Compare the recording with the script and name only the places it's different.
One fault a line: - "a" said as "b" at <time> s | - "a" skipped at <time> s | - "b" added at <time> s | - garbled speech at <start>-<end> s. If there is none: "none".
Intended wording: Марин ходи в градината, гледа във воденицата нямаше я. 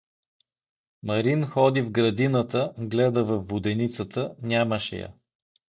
none